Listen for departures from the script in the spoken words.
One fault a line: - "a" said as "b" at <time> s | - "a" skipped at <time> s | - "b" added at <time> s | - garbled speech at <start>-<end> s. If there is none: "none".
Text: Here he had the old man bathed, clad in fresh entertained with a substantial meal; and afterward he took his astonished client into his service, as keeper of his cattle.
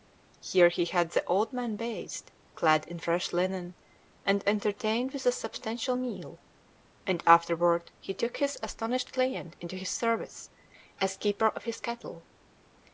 - "linen and" added at 3.3 s